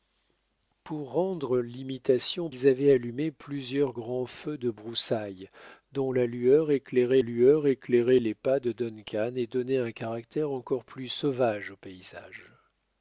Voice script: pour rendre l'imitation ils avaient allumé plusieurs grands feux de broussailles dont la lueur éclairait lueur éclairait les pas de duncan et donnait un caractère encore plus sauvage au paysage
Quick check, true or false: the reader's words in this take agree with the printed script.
true